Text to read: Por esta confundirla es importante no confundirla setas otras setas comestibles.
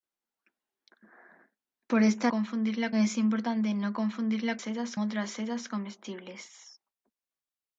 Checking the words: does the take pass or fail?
pass